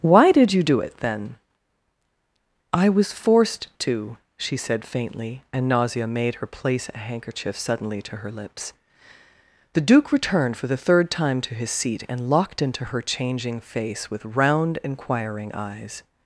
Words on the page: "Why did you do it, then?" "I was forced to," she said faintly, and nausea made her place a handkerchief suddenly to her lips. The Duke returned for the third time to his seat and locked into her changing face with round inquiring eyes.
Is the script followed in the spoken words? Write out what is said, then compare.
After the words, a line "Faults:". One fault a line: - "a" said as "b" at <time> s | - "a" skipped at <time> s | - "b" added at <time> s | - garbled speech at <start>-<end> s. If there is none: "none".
"Why did you do it, then?" "I was forced to," she said faintly, and nausea made her place a handkerchief suddenly to her lips. The Duke returned for the third time to his seat and locked into her changing face with round inquiring eyes.
Faults:
none